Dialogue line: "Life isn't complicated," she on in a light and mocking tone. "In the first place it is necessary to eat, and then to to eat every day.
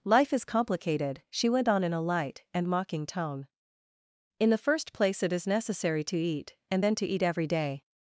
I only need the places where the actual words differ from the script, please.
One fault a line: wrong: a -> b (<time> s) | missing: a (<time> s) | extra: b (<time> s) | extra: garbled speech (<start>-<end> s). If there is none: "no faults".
wrong: isn't -> is (0.3 s)
extra: went (1.5 s)
missing: to (7.0 s)